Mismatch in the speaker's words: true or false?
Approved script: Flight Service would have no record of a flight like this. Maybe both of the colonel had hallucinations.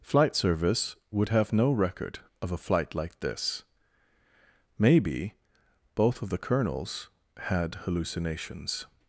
true